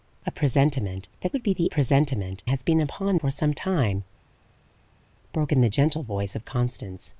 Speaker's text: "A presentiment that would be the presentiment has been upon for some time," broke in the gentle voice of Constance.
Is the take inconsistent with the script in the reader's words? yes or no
no